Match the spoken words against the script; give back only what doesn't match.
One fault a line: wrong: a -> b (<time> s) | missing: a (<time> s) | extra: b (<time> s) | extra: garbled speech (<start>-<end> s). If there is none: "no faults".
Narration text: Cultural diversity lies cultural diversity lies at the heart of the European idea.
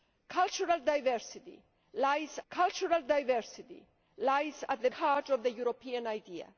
no faults